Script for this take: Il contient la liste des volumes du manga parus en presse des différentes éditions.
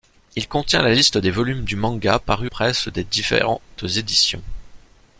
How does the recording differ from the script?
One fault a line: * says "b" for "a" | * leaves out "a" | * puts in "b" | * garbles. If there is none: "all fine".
* leaves out "en"